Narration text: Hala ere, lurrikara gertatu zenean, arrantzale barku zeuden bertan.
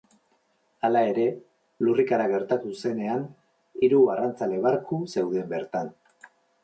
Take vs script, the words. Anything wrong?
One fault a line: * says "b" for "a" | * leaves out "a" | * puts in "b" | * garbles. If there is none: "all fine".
* puts in "hiru"